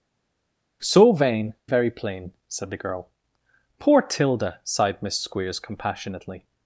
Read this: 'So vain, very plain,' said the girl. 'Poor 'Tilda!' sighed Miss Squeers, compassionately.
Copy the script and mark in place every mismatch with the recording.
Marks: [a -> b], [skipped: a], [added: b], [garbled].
'So vain, very plain,' said the girl. 'Poor 'Tilda!' sighed Miss Squeers, compassionately.